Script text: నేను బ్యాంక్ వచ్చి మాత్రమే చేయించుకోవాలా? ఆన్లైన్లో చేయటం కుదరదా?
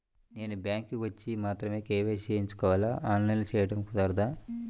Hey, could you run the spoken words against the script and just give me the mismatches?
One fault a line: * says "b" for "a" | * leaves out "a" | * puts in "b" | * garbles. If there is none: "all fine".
* puts in "కే.వై.సి"